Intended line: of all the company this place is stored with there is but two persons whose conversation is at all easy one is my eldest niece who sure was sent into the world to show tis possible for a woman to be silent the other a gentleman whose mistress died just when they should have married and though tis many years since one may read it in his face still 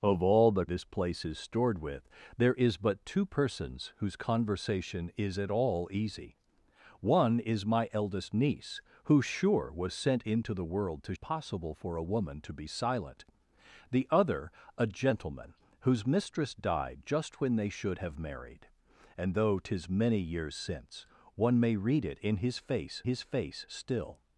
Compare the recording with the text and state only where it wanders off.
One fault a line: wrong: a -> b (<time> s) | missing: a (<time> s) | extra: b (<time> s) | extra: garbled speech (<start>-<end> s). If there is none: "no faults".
missing: company (0.7 s)
missing: show tis (11.1 s)
extra: his face (23.0 s)